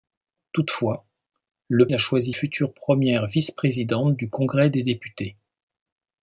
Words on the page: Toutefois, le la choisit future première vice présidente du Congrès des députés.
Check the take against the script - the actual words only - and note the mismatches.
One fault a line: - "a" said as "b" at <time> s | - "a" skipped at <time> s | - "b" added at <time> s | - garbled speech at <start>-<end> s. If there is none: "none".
none